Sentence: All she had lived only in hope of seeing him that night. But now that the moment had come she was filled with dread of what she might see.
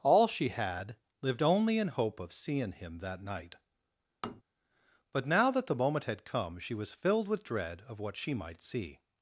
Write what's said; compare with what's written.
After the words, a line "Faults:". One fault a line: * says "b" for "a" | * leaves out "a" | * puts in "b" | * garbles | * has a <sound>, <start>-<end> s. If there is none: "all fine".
All she had lived only in hope of seeing him that night. But now that the moment had come she was filled with dread of what she might see.
Faults:
* has a tap, 4.2-4.4 s